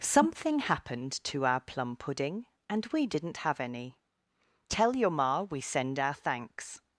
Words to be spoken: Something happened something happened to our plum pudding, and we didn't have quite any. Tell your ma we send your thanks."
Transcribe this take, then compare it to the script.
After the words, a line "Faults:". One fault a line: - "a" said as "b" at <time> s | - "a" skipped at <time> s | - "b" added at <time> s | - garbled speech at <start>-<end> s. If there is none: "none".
Something happened to our plum pudding, and we didn't have any. Tell your ma we send our thanks."
Faults:
- "something happened" skipped at 1.1 s
- "quite" skipped at 3.6 s
- "your" said as "our" at 6.0 s